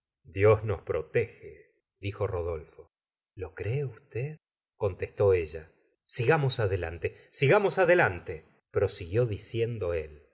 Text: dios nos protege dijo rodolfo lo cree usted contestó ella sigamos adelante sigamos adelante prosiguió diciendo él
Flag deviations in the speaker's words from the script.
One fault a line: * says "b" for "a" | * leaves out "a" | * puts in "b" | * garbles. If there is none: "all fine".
all fine